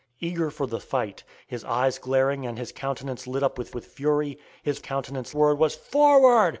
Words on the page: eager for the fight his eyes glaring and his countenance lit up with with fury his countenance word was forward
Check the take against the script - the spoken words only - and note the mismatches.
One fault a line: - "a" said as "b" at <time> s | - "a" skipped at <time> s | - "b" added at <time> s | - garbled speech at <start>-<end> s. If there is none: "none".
none